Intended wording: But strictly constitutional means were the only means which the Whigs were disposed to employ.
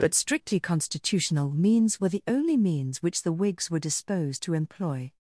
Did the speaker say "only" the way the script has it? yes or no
yes